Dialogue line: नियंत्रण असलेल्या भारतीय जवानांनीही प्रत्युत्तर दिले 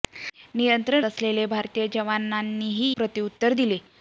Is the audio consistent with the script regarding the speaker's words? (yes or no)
yes